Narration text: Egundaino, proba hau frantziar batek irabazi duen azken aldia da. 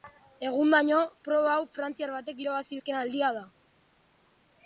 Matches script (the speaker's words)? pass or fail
fail